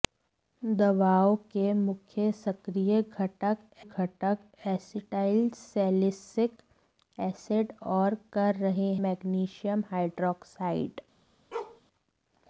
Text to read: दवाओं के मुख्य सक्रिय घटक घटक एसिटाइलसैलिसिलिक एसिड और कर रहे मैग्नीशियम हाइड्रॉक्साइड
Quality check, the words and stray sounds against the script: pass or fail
fail